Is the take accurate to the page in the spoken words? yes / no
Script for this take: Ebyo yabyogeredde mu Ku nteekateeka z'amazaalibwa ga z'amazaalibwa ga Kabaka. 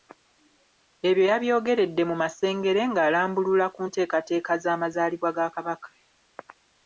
no